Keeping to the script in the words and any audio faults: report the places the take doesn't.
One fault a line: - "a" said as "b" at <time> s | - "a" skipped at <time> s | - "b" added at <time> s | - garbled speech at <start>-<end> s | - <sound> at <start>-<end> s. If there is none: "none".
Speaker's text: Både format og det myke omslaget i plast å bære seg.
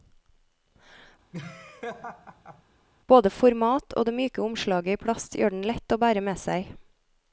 - laugh at 1.3-2.6 s
- "gjør den lett" added at 5.4 s
- "med" added at 6.2 s